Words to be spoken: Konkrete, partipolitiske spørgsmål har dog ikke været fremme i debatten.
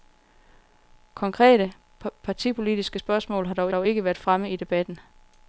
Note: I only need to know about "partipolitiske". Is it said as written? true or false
true